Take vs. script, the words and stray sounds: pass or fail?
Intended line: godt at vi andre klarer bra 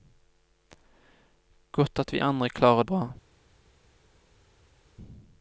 pass